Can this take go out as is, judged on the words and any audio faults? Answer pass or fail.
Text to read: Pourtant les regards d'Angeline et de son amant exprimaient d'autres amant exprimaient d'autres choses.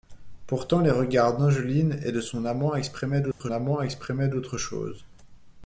fail